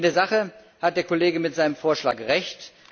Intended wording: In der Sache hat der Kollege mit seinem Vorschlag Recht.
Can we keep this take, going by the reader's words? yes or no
yes